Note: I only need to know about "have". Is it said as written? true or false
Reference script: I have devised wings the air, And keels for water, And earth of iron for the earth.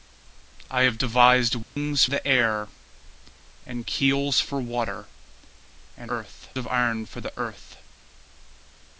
true